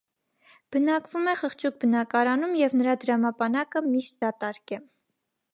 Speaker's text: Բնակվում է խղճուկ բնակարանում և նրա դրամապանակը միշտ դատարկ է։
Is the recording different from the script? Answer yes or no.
no